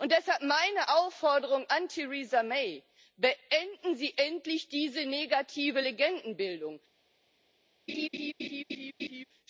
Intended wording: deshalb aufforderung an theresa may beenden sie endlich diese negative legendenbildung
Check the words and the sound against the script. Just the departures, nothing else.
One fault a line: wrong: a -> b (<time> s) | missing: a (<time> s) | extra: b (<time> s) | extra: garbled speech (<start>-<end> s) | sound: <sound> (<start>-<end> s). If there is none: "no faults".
extra: meine (0.4 s)
sound: laugh (7.9-9.2 s)